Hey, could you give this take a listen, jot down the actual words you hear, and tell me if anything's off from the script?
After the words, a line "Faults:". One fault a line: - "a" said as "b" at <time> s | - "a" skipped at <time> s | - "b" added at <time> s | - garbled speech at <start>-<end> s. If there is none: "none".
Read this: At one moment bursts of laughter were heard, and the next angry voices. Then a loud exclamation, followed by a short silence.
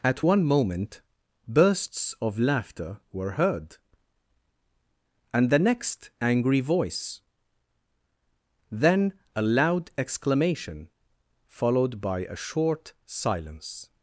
At one moment bursts of laughter were heard, and the next angry voice. Then a loud exclamation, followed by a short silence.
Faults:
- "voices" said as "voice" at 6.6 s